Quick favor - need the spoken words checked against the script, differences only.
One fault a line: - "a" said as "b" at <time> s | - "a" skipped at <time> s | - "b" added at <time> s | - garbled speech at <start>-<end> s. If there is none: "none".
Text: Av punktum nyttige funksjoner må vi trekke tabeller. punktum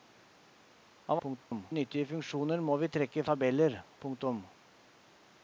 none